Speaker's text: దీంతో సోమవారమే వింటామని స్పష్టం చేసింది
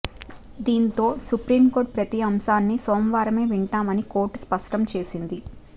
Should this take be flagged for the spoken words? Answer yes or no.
yes